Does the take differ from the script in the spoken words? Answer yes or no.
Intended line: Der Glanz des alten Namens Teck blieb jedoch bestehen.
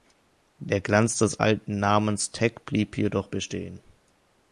no